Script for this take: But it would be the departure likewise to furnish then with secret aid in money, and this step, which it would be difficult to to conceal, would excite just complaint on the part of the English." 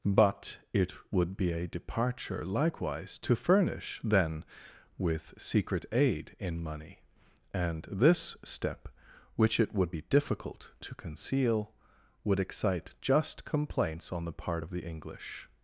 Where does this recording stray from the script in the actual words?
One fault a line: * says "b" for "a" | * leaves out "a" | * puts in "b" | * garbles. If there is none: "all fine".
* says "a" for "the"
* leaves out "to"
* says "complaints" for "complaint"